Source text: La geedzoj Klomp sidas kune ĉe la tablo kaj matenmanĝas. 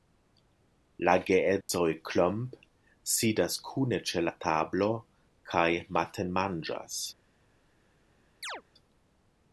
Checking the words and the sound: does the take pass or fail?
fail